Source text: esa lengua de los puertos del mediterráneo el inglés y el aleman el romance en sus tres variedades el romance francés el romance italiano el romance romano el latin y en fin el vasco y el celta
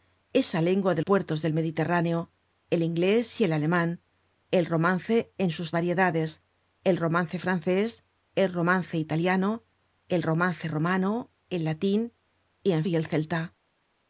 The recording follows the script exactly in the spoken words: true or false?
false